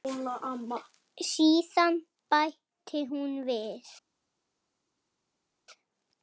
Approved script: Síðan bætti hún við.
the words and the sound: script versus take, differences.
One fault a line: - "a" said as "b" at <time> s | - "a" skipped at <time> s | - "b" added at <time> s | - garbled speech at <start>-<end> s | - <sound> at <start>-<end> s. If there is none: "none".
none